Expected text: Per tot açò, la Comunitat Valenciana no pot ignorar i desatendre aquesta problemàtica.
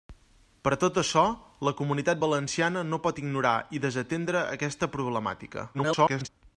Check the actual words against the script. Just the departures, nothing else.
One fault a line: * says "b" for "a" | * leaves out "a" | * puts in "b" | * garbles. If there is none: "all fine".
* garbles